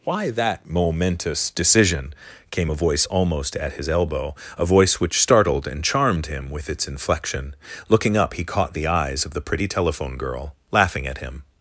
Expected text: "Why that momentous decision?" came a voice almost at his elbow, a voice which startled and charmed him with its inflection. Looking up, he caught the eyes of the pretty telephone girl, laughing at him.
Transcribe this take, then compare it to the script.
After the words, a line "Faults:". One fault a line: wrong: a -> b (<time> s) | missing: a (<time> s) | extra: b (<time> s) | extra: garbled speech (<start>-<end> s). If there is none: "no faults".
"Why that momentous decision?" came a voice almost at his elbow, a voice which startled and charmed him with its inflection. Looking up, he caught the eyes of the pretty telephone girl, laughing at him.
Faults:
no faults